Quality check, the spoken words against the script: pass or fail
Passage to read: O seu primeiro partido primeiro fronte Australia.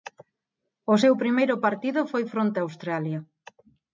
fail